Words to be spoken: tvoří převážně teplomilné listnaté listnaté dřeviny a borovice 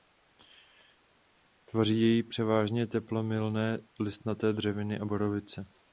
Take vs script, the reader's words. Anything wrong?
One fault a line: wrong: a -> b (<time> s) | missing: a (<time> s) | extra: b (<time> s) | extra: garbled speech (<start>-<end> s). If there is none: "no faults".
extra: jej (2.0 s)
missing: listnaté (4.5 s)